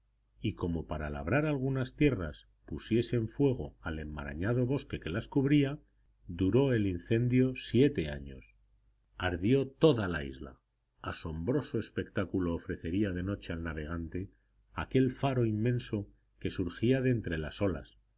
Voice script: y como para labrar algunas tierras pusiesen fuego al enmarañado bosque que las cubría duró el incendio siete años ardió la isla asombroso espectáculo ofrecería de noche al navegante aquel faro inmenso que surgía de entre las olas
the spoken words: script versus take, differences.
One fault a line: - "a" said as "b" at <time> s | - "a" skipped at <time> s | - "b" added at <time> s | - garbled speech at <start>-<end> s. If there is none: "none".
- "toda" added at 9.7 s